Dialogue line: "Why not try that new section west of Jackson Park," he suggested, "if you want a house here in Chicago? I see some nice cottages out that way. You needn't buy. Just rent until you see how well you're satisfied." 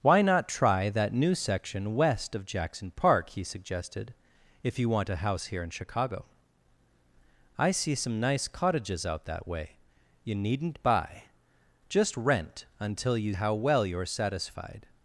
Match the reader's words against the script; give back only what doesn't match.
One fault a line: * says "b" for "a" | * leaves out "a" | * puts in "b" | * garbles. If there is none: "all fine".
* leaves out "see"